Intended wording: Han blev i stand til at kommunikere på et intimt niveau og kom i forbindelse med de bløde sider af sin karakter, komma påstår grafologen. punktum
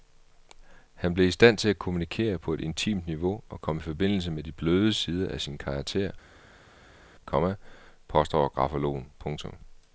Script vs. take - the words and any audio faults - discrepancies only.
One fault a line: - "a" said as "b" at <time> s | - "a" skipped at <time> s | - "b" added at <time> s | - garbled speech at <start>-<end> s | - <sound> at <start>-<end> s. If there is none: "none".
none